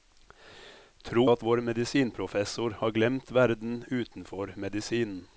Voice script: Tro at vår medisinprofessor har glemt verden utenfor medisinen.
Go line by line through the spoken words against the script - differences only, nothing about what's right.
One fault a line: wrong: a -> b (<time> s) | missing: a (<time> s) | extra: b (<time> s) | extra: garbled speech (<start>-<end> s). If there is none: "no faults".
no faults